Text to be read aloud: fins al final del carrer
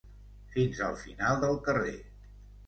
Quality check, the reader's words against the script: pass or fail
pass